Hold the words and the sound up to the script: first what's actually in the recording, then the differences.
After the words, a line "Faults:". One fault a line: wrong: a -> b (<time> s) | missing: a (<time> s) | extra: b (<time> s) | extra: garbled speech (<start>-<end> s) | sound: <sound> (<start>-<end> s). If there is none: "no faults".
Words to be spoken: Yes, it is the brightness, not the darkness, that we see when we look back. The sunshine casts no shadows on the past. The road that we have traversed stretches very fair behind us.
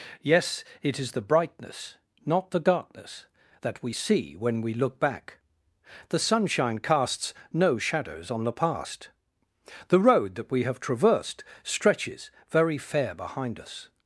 Yes, it is the brightness, not the darkness, that we see when we look back. The sunshine casts no shadows on the past. The road that we have traversed stretches very fair behind us.
Faults:
no faults